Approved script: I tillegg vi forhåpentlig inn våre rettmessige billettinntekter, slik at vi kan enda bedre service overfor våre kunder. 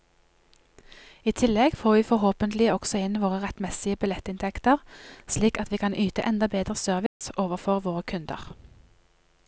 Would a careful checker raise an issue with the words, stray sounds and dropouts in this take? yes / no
yes